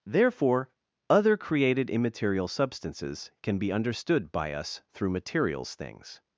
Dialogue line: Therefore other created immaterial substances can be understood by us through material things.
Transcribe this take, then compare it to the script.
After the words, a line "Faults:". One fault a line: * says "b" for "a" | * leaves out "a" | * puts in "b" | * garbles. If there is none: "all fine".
Therefore other created immaterial substances can be understood by us through materials things.
Faults:
* says "materials" for "material"